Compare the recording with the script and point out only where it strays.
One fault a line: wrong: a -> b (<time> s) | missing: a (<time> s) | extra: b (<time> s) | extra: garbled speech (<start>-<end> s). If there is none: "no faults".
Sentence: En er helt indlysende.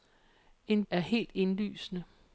no faults